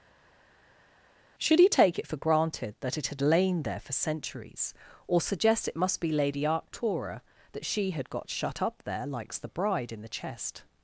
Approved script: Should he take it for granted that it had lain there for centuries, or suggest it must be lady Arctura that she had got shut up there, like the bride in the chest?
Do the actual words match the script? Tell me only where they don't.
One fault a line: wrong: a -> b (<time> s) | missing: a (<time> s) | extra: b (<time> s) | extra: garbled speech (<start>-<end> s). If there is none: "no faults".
wrong: like -> likes (9.0 s)